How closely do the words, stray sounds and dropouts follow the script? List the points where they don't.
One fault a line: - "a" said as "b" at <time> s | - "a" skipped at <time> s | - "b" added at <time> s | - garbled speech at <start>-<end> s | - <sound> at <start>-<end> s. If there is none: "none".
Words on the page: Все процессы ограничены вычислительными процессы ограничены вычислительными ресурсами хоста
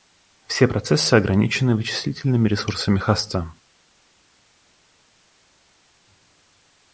- "процессы ограничены вычислительными" skipped at 2.5 s